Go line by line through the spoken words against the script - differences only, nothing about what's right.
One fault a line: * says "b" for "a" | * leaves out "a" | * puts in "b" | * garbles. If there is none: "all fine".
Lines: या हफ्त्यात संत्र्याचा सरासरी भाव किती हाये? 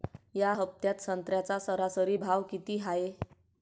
all fine